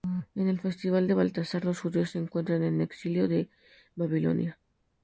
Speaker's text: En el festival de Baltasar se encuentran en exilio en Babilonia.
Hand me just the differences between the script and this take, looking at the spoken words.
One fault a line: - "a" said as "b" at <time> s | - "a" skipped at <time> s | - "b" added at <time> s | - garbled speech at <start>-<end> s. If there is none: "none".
- "los judíos" added at 1.7 s